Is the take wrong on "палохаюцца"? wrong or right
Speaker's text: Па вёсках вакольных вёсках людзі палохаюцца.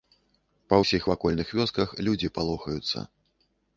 right